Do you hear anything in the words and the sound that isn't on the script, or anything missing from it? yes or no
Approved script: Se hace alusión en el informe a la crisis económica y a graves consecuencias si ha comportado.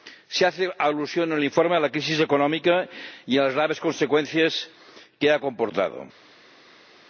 yes